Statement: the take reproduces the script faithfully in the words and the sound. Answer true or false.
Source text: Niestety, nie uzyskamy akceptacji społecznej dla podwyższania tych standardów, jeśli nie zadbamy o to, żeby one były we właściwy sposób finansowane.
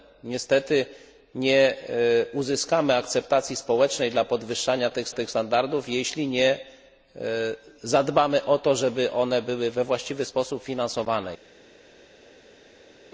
false